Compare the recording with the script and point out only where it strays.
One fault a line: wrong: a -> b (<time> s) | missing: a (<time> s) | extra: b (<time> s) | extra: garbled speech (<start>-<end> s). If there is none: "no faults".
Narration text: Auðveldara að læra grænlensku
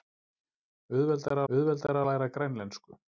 extra: auðveldara (1.5 s)